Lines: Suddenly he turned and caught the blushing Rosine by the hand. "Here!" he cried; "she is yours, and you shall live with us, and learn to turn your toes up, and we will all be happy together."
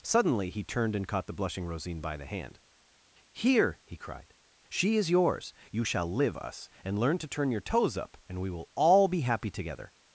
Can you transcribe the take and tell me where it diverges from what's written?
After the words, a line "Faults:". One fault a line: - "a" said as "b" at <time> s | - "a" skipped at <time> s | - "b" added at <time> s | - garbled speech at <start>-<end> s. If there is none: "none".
Suddenly he turned and caught the blushing Rosine by the hand. "Here!" he cried; "she is yours, you shall live us, and learn to turn your toes up, and we will all be happy together."
Faults:
- "and" skipped at 5.5 s
- "with" skipped at 6.4 s